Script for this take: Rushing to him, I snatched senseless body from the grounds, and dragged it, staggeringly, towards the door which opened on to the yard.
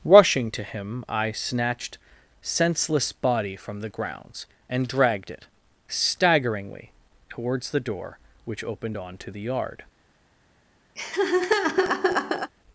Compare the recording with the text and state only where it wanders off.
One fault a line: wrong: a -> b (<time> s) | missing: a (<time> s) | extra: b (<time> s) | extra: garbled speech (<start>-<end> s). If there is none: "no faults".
no faults